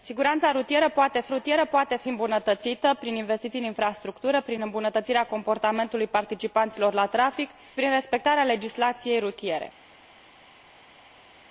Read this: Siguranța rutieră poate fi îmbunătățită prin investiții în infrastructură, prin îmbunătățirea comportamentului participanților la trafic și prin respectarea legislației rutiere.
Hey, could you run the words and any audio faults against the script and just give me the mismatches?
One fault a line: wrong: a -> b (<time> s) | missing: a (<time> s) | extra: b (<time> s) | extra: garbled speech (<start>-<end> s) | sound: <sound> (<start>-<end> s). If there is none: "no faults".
extra: rutieră poate fi (1.3 s)
missing: și (7.5 s)